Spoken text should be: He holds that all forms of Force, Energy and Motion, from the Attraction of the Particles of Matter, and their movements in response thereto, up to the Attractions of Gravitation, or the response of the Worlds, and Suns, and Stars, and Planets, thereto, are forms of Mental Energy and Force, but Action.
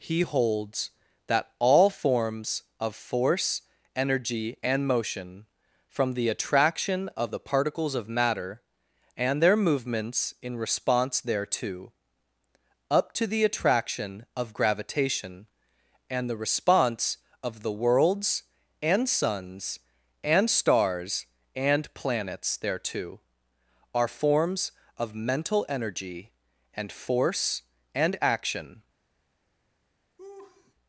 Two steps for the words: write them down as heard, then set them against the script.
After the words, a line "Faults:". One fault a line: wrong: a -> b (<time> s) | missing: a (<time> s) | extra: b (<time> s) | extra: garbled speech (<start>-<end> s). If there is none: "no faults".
He holds that all forms of Force, Energy and Motion, from the Attraction of the Particles of Matter, and their movements in response thereto, up to the Attraction of Gravitation, and the response of the Worlds, and Suns, and Stars, and Planets, thereto, are forms of Mental Energy and Force, and Action.
Faults:
wrong: Attractions -> Attraction (13.4 s)
wrong: or -> and (16.1 s)
wrong: but -> and (27.9 s)